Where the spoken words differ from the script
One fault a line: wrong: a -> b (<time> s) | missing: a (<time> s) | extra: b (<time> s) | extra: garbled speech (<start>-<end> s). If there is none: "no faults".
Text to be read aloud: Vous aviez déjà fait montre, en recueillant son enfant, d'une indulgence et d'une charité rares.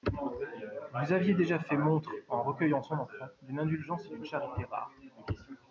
no faults